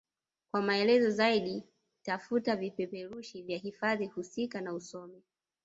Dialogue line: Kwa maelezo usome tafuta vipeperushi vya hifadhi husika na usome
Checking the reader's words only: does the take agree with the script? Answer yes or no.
no